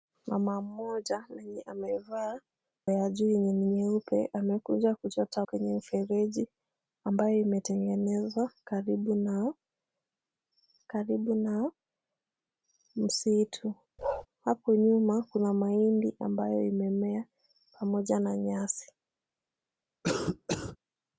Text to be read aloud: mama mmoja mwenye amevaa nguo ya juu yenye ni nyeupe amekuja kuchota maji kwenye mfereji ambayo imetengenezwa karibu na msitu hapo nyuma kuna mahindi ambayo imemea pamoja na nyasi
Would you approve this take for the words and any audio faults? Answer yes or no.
no